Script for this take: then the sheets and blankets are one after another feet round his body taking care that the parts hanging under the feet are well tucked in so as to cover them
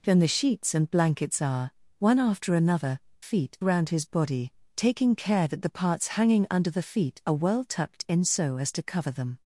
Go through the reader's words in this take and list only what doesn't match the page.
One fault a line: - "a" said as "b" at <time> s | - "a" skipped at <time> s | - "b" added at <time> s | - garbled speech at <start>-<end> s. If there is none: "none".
none